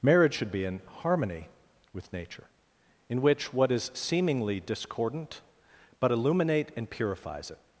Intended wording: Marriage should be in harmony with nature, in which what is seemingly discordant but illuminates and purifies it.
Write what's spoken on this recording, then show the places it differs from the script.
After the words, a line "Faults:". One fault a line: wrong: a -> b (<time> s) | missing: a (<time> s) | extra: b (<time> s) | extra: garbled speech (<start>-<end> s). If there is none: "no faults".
Marriage should be in harmony with nature, in which what is seemingly discordant but illuminate and purifies it.
Faults:
wrong: illuminates -> illuminate (6.1 s)